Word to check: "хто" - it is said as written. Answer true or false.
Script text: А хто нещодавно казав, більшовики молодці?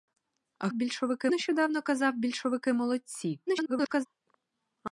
false